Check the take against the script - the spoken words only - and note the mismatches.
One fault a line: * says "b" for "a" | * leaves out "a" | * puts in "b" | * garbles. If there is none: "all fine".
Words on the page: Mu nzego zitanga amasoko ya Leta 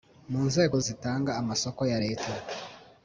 all fine